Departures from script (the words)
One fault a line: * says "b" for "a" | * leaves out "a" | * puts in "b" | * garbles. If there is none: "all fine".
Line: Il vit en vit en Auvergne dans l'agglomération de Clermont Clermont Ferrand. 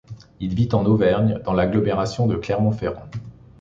* leaves out "vit en"
* leaves out "Clermont"